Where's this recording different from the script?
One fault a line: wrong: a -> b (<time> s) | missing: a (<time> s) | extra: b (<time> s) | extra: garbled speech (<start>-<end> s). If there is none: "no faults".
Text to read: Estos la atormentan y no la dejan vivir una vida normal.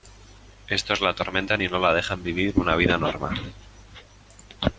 no faults